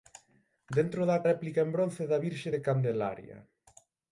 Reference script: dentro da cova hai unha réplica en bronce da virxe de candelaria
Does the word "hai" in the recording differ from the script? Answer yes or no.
yes